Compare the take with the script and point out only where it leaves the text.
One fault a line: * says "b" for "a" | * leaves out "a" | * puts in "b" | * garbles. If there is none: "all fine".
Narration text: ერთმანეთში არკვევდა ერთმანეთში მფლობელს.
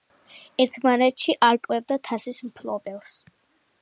* says "თასის" for "ერთმანეთში"